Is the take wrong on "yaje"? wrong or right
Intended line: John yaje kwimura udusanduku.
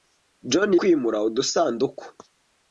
wrong